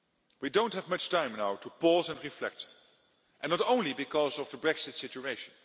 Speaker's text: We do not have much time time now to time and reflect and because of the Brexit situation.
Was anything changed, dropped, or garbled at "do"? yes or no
no